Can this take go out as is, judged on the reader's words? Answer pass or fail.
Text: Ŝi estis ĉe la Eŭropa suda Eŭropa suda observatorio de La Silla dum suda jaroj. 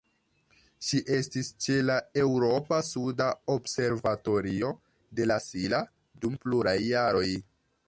fail